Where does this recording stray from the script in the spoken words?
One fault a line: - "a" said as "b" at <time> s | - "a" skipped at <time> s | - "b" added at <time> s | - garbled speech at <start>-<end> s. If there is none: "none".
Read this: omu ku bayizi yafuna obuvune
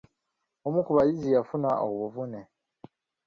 none